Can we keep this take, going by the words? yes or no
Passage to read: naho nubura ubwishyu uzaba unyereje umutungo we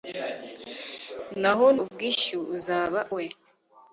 no